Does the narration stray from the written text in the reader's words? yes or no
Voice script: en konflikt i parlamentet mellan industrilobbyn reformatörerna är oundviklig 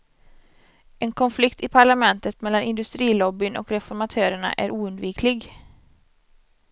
yes